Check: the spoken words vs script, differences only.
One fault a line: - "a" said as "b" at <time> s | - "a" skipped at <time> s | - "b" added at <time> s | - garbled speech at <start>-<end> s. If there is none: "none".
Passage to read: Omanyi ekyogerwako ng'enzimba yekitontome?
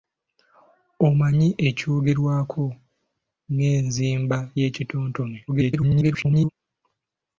- garbled speech at 5.5-6.5 s